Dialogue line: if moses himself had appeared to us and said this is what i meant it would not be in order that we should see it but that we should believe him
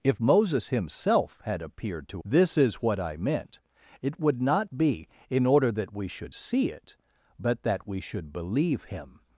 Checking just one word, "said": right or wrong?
wrong